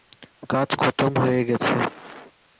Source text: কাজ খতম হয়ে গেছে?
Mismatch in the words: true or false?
false